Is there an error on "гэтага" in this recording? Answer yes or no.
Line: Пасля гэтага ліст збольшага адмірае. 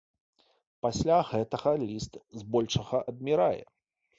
no